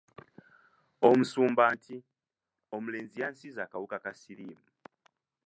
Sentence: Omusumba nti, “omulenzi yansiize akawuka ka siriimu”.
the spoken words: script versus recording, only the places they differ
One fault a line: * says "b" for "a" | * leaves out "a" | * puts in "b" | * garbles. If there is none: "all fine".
all fine